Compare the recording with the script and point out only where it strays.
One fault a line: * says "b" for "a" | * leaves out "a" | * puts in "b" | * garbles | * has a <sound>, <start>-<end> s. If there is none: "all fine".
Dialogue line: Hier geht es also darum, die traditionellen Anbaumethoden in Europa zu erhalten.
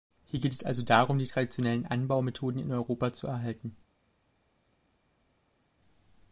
all fine